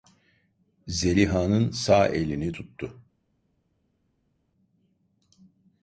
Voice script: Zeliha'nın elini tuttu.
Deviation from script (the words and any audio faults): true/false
true